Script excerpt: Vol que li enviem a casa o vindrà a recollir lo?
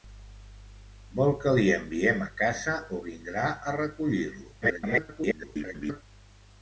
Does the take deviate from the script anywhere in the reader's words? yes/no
yes